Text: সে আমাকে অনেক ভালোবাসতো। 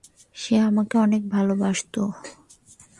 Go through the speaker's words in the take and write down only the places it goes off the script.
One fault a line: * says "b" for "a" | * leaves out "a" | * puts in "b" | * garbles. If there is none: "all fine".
all fine